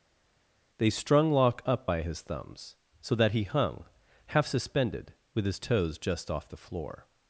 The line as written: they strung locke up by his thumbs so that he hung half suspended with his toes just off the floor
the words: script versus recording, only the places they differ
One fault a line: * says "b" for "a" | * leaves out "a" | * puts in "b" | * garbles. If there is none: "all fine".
all fine